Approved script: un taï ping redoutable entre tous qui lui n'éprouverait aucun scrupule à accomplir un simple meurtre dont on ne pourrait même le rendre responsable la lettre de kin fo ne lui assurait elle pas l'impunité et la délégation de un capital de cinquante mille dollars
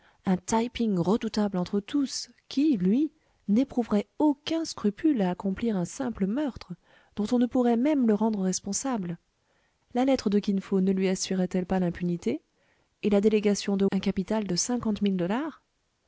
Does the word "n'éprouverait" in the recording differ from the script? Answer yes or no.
no